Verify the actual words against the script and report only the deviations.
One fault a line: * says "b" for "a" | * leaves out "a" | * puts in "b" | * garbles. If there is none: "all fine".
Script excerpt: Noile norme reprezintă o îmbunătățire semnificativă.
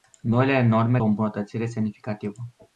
* leaves out "reprezintă"